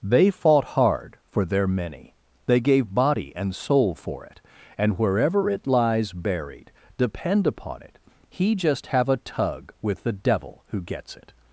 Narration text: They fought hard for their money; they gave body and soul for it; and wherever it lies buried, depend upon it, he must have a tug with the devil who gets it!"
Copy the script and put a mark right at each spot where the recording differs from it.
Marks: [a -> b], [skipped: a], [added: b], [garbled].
They fought hard for their [money; -> many] they gave body and soul for it; and wherever it lies buried, depend upon it, he [must -> just] have a tug with the devil who gets it!"